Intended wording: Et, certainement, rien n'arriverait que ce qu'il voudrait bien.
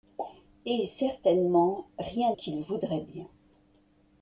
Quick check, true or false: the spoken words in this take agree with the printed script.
false